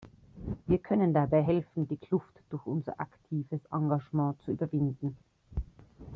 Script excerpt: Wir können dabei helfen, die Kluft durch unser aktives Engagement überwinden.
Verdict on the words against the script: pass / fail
fail